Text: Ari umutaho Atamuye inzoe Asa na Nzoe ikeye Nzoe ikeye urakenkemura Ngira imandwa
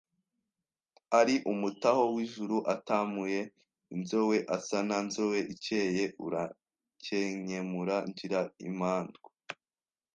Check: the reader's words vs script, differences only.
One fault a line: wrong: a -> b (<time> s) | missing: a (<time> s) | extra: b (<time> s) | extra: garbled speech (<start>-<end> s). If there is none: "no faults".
extra: w'ijuru (2.1 s)
missing: Nzoe ikeye (6.0 s)